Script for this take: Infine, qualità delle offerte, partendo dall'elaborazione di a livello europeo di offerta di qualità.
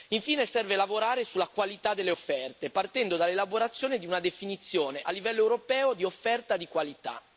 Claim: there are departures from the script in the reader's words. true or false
true